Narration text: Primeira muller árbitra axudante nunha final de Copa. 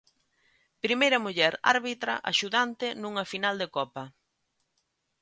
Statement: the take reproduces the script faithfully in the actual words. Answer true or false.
true